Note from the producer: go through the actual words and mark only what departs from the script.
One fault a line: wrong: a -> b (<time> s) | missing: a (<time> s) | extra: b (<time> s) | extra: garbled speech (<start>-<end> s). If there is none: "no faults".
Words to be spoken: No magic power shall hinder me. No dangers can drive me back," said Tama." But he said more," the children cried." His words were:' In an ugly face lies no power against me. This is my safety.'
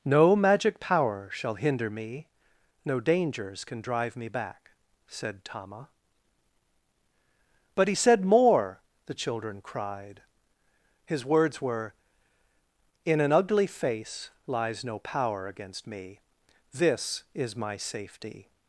no faults